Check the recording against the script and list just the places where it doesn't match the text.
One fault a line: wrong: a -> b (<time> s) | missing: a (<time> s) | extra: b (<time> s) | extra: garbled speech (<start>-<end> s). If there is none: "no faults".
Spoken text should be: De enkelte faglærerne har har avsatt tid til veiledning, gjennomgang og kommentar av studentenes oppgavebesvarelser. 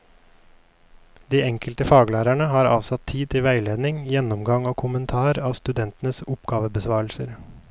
missing: har (2.7 s)